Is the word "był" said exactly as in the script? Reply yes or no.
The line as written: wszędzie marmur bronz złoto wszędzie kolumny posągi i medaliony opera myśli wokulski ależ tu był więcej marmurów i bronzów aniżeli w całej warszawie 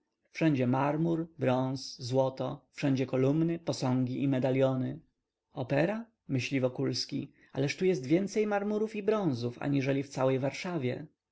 no